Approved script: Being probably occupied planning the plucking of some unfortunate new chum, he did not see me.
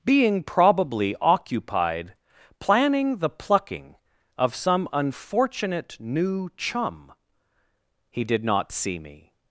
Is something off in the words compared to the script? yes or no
no